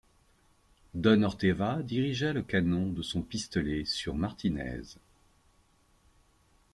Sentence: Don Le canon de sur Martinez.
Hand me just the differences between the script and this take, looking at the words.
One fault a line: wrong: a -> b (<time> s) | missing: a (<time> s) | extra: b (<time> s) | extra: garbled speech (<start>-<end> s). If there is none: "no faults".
extra: Orteva dirigea (1.2 s)
extra: son pistolet (3.0 s)